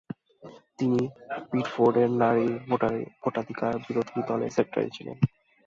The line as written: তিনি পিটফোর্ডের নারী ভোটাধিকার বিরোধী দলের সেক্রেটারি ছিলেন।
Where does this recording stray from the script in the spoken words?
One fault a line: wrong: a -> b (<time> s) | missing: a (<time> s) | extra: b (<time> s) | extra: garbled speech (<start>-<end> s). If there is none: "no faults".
no faults